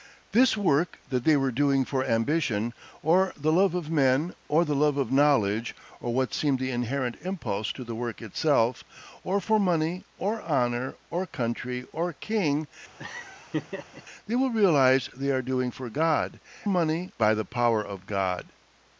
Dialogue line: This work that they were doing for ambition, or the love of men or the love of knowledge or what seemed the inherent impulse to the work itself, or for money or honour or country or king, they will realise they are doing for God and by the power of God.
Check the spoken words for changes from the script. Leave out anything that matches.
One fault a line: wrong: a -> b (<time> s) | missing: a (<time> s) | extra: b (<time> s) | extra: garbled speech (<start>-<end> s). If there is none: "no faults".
wrong: and -> money (16.7 s)